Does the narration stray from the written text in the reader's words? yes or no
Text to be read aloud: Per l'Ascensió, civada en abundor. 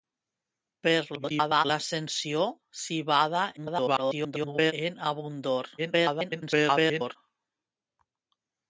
yes